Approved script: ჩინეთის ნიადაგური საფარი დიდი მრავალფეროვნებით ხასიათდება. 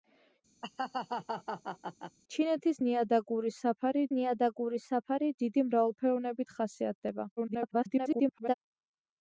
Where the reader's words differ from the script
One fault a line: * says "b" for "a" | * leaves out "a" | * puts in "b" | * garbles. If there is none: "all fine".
* puts in "ნიადაგური საფარი"
* garbles